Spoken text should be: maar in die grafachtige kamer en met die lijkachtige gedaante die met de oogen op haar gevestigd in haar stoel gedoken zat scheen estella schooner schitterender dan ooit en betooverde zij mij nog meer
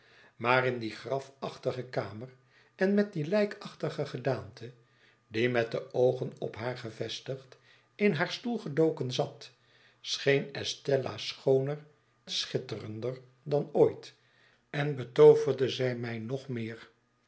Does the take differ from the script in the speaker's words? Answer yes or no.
no